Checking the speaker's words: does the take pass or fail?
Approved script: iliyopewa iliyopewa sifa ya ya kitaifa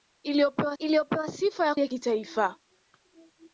pass